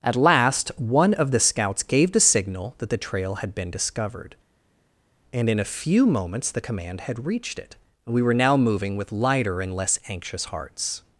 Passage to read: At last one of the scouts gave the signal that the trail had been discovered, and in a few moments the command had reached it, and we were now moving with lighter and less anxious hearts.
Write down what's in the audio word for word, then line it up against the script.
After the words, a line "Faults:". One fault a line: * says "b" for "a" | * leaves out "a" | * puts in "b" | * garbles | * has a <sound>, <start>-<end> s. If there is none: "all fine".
At last one of the scouts gave the signal that the trail had been discovered, and in a few moments the command had reached it, we were now moving with lighter and less anxious hearts.
Faults:
* leaves out "and"